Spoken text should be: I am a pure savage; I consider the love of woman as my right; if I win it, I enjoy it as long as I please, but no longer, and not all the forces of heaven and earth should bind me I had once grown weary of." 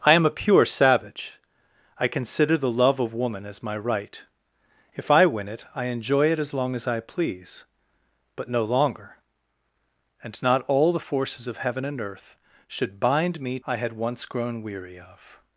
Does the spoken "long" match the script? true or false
true